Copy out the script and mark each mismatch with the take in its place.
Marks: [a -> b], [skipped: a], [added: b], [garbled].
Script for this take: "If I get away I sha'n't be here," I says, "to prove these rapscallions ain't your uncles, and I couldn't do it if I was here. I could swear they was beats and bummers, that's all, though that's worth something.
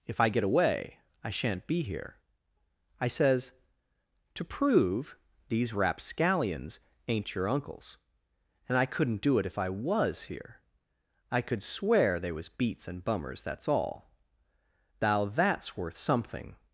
"If I get away I sha'n't be here," I says, "to prove these rapscallions ain't your uncles, and I couldn't do it if I was here. I could swear they was beats and bummers, that's all, [though -> thou] that's worth something.